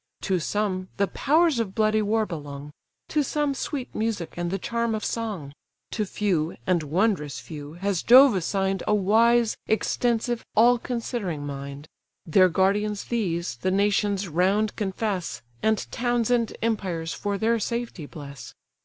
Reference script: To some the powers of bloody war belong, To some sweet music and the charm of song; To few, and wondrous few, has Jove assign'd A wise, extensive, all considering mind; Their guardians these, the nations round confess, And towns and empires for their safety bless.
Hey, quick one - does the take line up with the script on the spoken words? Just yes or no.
yes